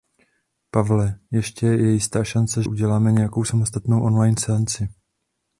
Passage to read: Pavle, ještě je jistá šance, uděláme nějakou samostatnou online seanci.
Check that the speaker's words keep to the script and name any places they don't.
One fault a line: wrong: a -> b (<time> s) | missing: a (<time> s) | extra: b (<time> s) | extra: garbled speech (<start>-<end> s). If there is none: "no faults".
no faults